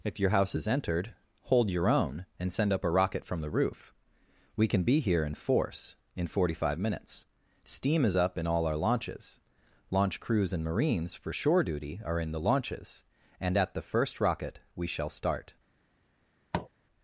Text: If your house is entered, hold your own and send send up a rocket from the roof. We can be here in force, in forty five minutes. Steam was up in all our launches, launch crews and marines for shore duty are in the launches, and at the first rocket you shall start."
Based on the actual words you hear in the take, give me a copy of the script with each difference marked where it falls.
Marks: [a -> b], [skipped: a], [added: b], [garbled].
If your house is entered, hold your own and send [skipped: send] up a rocket from the roof. We can be here in force, in forty five minutes. Steam [was -> is] up in all our launches, launch crews and marines for shore duty are in the launches, and at the first rocket [you -> we] shall start."